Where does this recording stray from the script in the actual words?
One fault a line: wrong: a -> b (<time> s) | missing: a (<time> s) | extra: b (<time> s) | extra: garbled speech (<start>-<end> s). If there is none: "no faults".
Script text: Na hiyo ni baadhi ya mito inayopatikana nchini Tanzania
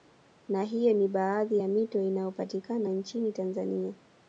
no faults